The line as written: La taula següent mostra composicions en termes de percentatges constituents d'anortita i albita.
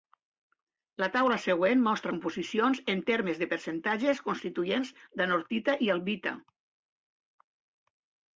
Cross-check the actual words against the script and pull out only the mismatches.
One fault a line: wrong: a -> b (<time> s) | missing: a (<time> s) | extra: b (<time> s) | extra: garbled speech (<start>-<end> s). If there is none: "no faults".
no faults